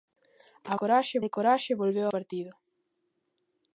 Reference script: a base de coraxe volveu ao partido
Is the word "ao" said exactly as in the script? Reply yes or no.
no